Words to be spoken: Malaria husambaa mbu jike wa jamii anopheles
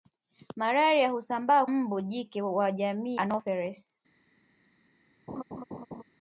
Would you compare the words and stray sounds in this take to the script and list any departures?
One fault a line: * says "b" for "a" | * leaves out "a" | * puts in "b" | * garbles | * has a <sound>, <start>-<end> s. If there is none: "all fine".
* has a laugh, 5.3-6.0 s